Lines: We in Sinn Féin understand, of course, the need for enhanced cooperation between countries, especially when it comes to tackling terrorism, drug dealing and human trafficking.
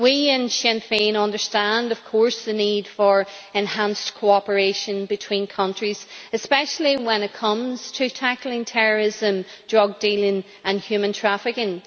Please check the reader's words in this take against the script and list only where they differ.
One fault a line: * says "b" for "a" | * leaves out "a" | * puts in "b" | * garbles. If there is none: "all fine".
all fine